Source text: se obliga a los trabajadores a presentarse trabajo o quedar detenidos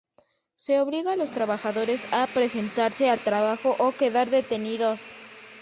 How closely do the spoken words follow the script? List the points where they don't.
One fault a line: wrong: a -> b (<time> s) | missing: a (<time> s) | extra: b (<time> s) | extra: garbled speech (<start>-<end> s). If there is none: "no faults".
extra: al (3.1 s)